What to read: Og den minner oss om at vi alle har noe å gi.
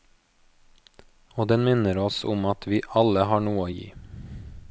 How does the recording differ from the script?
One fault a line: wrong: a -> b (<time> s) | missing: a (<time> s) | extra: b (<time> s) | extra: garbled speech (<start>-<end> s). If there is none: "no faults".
no faults